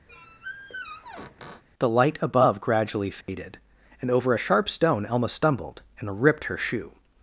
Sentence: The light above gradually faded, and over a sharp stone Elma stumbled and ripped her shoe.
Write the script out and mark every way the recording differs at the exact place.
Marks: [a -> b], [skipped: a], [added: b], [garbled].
The light above gradually faded, and over a sharp stone Elma stumbled and ripped her shoe.